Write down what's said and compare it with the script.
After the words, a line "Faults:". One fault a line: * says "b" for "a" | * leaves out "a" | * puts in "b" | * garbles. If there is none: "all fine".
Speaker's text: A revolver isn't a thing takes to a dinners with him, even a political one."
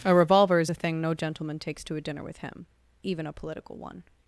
A revolver is a thing no gentleman takes to a dinner with him, even a political one."
Faults:
* says "is" for "isn't"
* puts in "no gentleman"
* says "dinner" for "dinners"